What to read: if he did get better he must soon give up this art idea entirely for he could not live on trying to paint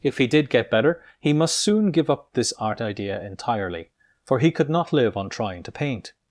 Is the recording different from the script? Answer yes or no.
no